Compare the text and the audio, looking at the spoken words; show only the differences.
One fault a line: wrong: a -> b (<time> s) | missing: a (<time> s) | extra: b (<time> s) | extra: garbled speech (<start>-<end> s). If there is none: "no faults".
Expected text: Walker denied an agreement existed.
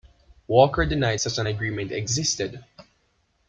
extra: such (1.2 s)